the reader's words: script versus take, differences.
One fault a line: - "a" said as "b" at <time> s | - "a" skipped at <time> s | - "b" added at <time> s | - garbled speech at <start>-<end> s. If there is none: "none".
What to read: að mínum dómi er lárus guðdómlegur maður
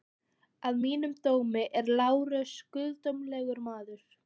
none